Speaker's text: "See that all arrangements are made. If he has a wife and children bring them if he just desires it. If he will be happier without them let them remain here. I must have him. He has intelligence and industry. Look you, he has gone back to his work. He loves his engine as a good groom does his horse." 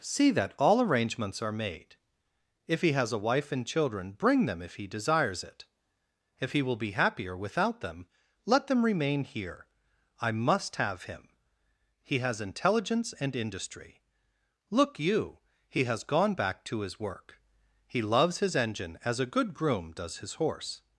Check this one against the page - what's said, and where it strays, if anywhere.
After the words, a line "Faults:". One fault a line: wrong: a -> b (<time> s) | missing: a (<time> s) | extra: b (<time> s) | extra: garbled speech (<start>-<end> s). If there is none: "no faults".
"See that all arrangements are made. If he has a wife and children bring them if he desires it. If he will be happier without them let them remain here. I must have him. He has intelligence and industry. Look you, he has gone back to his work. He loves his engine as a good groom does his horse."
Faults:
missing: just (4.9 s)